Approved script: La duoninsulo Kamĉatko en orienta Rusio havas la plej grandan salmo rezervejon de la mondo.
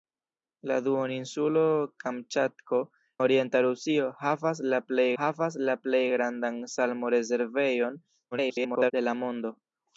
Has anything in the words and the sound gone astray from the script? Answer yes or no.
yes